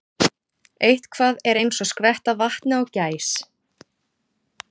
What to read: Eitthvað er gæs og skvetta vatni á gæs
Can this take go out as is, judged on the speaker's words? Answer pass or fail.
fail